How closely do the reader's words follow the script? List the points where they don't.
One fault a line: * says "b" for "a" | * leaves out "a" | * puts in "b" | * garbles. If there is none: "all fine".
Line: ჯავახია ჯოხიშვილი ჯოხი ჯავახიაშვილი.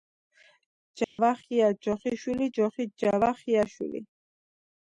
all fine